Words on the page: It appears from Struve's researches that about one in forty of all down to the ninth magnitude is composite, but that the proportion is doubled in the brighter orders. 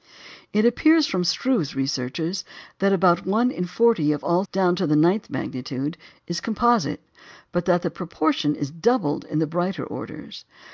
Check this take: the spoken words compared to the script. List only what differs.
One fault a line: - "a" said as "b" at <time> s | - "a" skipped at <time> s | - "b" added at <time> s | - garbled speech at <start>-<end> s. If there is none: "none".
none